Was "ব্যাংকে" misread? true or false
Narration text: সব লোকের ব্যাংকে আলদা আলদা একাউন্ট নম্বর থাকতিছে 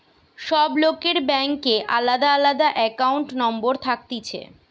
false